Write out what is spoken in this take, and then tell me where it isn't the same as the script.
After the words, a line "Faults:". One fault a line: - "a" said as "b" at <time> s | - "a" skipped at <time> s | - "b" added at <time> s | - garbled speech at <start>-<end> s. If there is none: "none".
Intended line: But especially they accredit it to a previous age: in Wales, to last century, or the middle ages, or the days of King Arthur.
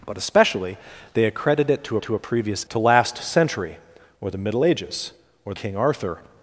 But especially they accredit it to to a previous to last century, or the middle ages, or King Arthur.
Faults:
- "to" added at 2.0 s
- "age in Wales" skipped at 2.7 s
- "the days of" skipped at 5.5 s